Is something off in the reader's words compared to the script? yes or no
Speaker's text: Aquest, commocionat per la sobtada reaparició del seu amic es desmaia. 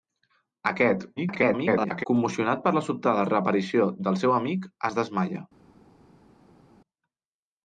yes